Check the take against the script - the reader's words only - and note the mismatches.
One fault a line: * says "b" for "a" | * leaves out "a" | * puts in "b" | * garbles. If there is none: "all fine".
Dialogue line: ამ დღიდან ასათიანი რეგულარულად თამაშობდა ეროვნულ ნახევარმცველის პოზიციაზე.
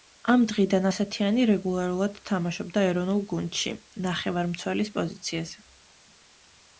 * puts in "გუნდში"